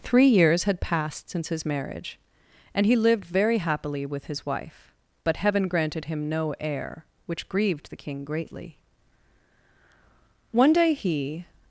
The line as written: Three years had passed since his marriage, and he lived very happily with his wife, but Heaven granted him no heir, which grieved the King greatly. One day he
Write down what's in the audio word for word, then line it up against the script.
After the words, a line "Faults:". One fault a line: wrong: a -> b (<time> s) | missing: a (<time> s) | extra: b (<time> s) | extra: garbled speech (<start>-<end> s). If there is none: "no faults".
Three years had passed since his marriage, and he lived very happily with his wife, but Heaven granted him no heir, which grieved the King greatly. One day he
Faults:
no faults